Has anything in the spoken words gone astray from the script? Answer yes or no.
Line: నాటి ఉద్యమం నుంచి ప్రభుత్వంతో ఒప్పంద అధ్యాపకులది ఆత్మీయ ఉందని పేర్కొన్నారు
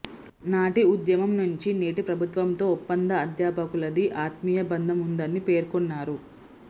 yes